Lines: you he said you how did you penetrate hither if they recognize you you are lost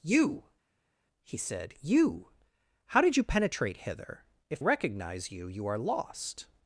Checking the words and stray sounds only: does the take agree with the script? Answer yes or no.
no